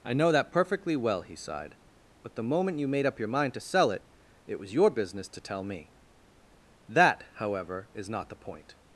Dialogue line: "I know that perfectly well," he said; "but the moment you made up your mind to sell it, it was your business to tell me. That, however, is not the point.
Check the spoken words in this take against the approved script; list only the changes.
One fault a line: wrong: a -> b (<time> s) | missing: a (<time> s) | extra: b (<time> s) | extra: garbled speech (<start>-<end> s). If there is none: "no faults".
wrong: said -> sighed (1.4 s)